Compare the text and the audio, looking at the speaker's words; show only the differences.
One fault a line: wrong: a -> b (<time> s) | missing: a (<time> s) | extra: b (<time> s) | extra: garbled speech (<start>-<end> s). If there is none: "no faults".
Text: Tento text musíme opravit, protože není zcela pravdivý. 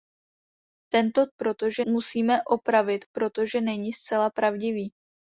wrong: text -> protože (1.4 s)